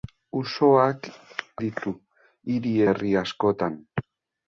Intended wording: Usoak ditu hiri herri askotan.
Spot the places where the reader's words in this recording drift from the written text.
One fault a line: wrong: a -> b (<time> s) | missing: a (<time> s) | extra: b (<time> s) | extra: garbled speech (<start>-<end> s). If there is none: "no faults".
no faults